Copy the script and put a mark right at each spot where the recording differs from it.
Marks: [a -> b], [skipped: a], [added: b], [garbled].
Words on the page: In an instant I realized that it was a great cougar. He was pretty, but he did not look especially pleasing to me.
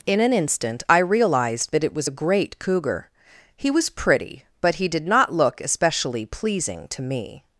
In an instant I realized that it was a great cougar. He was pretty, but he did not look especially pleasing to me.